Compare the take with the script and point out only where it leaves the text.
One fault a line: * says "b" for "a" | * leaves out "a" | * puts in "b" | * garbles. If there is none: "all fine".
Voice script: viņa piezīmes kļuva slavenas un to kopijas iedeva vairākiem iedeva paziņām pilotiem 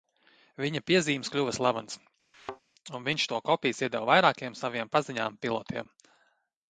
* puts in "viņš"
* says "saviem" for "iedeva"